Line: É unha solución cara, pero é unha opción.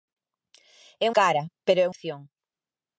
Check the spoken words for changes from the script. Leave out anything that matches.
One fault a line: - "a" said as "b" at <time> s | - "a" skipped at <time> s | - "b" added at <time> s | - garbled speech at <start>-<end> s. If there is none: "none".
- "unha solución" skipped at 1.1 s
- "unha" skipped at 1.9 s